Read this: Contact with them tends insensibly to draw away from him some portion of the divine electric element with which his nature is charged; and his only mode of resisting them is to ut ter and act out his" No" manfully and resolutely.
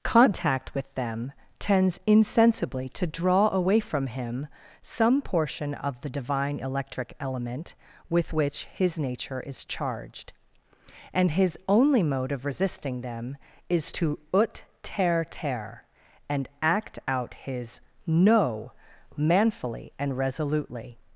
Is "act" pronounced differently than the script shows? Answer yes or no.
no